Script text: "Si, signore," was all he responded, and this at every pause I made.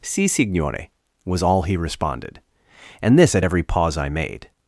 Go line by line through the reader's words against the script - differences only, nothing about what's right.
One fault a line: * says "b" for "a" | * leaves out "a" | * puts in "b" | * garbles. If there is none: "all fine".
all fine